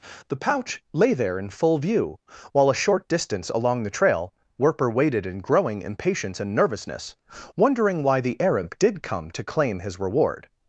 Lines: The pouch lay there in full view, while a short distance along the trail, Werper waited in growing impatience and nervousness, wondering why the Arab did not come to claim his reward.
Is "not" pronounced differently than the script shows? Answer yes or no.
yes